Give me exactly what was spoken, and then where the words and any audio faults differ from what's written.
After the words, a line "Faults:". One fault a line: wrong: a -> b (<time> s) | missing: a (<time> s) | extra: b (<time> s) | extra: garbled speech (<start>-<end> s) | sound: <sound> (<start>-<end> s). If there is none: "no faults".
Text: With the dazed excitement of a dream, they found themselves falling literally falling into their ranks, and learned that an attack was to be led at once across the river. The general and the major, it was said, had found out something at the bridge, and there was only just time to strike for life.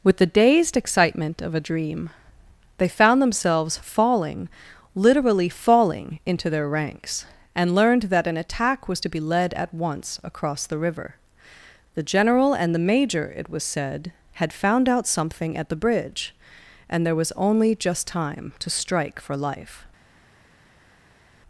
With the dazed excitement of a dream, they found themselves falling literally falling into their ranks, and learned that an attack was to be led at once across the river. The general and the major, it was said, had found out something at the bridge, and there was only just time to strike for life.
Faults:
no faults